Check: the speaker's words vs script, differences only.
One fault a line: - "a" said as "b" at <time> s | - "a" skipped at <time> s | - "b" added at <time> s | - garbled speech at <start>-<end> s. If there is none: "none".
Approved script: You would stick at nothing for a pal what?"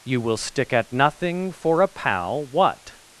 - "would" said as "will" at 0.2 s